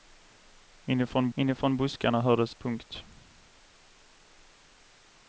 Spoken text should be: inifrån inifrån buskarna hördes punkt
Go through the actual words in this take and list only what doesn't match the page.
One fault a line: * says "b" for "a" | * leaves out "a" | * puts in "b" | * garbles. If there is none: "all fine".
all fine